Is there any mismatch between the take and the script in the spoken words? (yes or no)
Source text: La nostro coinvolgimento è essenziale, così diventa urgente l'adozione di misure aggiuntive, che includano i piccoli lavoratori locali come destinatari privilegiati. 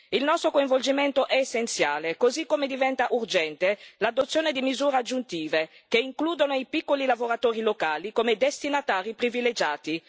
yes